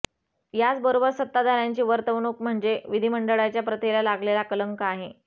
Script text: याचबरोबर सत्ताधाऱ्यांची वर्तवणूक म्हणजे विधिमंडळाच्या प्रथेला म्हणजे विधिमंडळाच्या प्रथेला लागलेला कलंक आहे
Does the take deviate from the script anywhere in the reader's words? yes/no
yes